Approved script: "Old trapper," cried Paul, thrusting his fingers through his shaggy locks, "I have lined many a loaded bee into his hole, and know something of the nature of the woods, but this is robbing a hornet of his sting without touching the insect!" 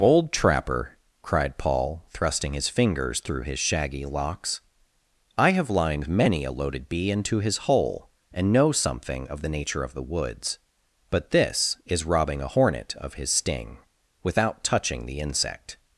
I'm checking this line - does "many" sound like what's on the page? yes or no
yes